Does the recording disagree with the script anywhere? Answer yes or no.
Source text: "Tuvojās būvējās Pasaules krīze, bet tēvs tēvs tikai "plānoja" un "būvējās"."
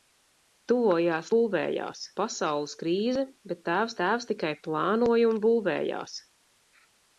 no